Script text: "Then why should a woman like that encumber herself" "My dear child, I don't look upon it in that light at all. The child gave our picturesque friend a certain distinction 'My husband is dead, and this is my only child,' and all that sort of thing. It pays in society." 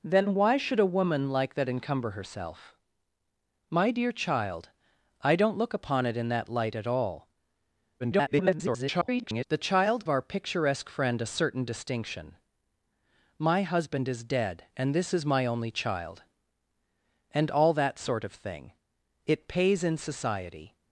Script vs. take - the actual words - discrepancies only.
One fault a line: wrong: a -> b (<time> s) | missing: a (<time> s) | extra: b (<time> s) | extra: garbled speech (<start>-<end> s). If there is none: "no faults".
extra: garbled speech (8.0-9.4 s)
missing: gave (10.1 s)